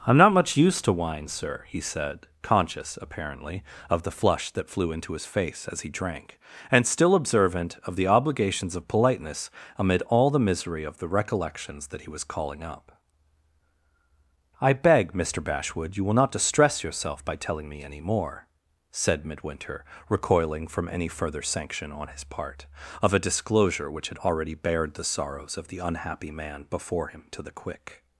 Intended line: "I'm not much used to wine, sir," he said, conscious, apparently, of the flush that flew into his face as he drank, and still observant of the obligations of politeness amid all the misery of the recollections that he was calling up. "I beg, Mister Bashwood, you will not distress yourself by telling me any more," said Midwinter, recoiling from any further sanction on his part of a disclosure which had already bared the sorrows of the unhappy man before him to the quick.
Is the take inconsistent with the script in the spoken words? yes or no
no